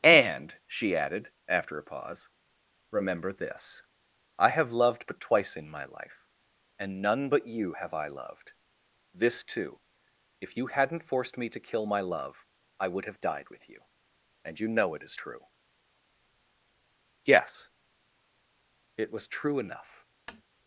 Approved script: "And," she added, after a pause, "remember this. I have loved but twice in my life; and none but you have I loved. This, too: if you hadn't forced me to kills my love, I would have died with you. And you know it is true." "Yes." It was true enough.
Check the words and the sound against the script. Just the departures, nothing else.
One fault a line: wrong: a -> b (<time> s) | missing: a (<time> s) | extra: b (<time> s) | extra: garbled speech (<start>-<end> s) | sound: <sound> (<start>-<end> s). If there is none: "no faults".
wrong: kills -> kill (11.6 s)
sound: tap (20.3-20.4 s)